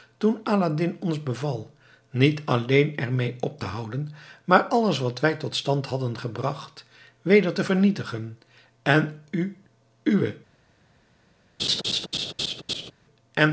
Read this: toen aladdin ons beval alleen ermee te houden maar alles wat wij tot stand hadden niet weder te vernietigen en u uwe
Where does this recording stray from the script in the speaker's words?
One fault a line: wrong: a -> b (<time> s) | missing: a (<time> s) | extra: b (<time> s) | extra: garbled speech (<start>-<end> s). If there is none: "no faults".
extra: niet (2.1 s)
extra: op (3.4 s)
wrong: niet -> gebracht (6.2 s)